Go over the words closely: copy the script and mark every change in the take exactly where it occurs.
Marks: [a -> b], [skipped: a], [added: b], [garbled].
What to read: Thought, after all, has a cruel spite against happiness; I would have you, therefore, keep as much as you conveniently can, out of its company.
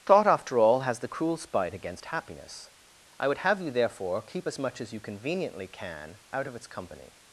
Thought, after all, has [a -> the] cruel spite against happiness; I would have you, therefore, keep as much as you conveniently can, out of its company.